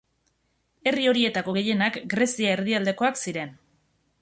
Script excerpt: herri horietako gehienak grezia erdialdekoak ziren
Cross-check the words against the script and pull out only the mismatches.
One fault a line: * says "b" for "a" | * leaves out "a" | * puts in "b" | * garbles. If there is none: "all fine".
all fine